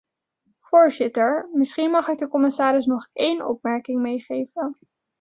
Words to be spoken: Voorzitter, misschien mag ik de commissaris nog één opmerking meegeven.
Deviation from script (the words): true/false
false